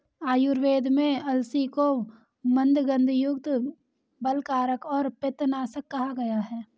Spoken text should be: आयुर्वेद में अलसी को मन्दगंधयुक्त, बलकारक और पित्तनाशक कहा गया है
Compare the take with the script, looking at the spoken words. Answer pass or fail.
pass